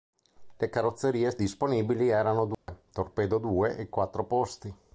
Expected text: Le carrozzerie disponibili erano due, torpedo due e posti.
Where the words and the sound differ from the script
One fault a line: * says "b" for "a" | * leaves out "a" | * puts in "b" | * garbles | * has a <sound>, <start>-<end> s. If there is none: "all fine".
* has a dropout, 2.5-2.7 s
* puts in "quattro"